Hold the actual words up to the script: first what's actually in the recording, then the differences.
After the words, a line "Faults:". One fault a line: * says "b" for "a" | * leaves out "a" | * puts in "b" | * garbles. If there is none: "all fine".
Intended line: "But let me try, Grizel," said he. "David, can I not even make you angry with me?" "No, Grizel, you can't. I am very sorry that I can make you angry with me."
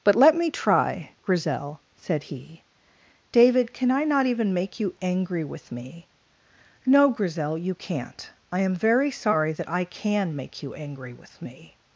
"But let me try, Grizel," said he. "David, can I not even make you angry with me?" "No, Grizel, you can't. I am very sorry that I can make you angry with me."
Faults:
all fine